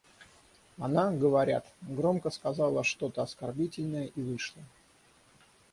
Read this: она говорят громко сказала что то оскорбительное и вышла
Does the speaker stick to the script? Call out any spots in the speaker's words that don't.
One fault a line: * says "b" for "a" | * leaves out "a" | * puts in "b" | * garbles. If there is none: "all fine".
all fine